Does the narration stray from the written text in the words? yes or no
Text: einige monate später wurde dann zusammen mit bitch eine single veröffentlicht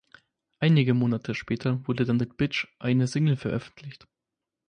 yes